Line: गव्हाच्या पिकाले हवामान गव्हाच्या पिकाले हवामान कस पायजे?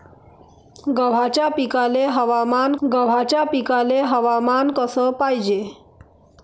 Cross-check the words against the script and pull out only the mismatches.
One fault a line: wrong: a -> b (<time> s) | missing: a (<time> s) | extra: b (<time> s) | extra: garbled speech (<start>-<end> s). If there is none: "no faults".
no faults